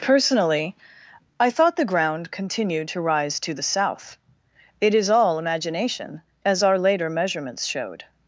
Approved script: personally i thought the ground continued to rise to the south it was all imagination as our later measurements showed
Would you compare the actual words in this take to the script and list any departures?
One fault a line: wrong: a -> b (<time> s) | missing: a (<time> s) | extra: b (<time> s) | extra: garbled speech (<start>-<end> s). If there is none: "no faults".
wrong: was -> is (4.9 s)